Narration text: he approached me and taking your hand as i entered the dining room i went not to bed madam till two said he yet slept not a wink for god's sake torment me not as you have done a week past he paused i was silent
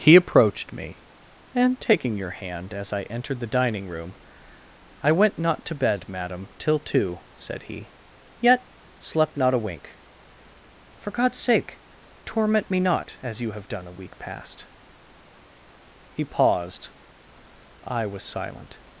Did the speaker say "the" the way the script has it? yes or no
yes